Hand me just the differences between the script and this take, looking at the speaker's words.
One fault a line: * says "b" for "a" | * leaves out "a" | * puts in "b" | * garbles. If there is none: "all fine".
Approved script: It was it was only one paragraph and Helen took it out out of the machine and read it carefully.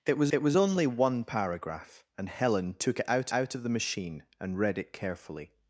all fine